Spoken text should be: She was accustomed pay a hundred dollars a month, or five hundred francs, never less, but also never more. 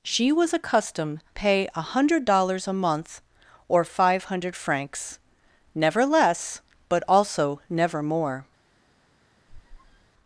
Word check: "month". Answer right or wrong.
right